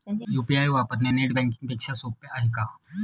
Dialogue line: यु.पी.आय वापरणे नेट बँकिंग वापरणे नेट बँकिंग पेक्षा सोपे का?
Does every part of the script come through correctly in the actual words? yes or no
no